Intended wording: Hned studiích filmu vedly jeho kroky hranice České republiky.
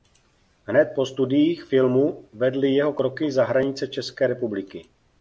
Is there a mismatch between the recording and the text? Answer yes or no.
yes